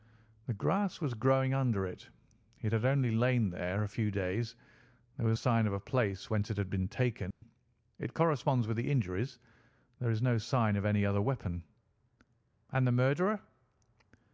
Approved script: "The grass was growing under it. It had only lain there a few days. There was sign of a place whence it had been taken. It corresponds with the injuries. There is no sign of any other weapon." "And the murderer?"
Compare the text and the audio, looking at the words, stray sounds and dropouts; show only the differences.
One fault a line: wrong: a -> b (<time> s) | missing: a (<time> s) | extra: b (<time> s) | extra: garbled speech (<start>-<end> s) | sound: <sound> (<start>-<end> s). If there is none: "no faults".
sound: dropout (7.3-7.4 s)